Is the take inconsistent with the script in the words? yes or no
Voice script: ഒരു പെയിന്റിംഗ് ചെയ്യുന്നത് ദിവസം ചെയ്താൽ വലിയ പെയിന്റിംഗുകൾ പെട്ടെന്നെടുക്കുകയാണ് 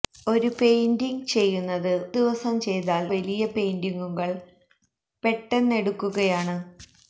no